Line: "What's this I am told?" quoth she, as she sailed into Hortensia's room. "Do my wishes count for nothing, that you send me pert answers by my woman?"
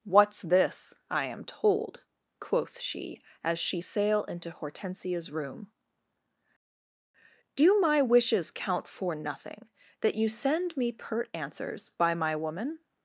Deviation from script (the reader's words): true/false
true